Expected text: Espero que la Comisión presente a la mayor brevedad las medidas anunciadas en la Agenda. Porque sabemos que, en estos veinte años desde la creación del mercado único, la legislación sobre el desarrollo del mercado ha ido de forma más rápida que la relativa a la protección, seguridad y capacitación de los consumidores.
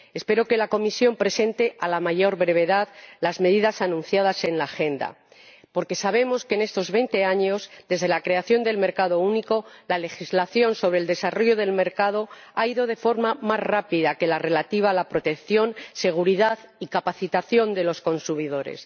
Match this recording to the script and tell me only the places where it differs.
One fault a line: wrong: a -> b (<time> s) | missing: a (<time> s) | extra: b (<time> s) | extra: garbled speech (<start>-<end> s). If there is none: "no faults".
no faults